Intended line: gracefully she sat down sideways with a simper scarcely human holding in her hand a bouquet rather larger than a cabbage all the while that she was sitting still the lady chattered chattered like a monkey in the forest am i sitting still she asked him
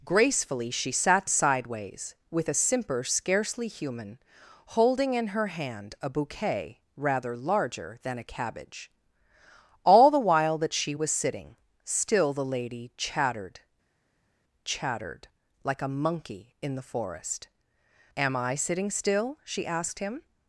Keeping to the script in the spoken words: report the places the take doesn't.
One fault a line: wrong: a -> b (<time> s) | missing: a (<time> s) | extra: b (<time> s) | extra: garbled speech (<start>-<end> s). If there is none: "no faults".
missing: down (1.3 s)